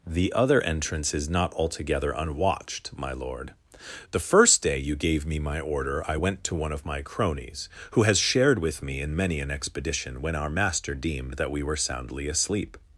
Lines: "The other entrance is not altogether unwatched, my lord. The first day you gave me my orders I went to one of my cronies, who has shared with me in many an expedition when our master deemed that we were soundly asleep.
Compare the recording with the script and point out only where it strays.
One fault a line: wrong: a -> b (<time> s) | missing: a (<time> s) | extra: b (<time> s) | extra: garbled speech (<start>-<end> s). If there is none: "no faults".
wrong: orders -> order (5.6 s)